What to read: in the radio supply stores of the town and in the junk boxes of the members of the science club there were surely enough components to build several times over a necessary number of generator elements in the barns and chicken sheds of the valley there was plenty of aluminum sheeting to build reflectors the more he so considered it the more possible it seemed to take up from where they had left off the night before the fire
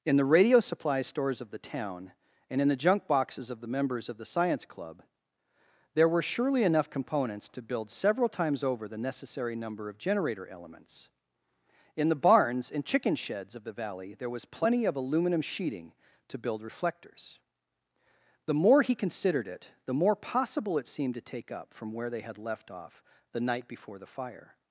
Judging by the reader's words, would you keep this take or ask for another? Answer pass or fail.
fail